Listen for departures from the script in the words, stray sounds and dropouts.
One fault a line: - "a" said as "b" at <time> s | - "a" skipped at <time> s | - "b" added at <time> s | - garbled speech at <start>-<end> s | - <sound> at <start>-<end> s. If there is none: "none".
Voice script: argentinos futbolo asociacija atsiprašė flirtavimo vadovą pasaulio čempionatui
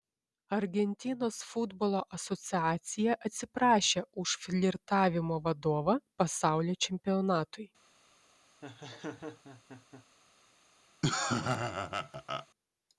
- "už" added at 4.2 s
- laugh at 8.6-10.1 s
- laugh at 11.0-12.5 s